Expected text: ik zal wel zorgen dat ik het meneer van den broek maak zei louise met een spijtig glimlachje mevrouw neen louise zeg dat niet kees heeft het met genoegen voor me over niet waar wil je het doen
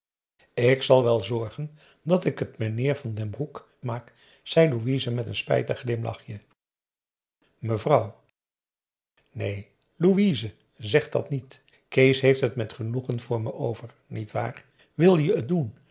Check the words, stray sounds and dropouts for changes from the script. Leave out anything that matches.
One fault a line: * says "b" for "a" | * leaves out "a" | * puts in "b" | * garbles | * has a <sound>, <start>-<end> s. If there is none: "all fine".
all fine